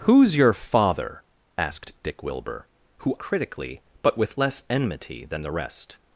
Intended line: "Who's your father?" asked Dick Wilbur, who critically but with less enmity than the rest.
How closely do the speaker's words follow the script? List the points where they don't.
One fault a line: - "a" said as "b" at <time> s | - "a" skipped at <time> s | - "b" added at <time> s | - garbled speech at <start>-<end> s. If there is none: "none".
none